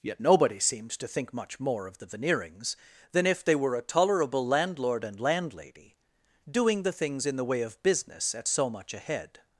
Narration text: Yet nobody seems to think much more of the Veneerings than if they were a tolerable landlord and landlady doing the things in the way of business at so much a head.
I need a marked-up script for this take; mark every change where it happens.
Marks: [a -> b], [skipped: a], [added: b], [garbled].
Yet nobody seems to think much more of the Veneerings than if they were a tolerable landlord and landlady doing the things in the way of business at so much a head.